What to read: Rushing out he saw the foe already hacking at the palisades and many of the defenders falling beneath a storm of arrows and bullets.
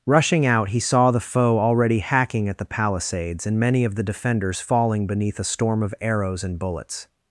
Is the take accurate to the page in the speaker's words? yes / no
yes